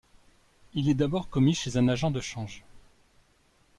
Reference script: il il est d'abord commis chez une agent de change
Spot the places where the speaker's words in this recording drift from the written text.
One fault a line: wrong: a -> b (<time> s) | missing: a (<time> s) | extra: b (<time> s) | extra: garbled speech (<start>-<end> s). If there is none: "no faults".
missing: il (0.9 s)
wrong: une -> un (1.8 s)